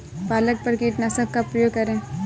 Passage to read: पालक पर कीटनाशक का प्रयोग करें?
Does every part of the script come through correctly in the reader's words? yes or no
yes